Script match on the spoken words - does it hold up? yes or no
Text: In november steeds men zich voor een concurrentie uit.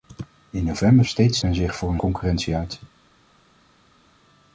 yes